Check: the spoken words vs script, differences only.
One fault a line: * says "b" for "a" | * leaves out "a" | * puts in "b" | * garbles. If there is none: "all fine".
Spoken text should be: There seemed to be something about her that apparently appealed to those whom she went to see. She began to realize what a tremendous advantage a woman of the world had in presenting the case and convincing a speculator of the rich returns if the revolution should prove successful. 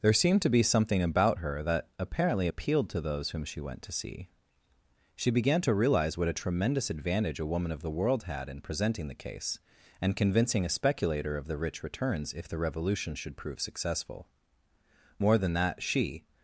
* puts in "More than that she"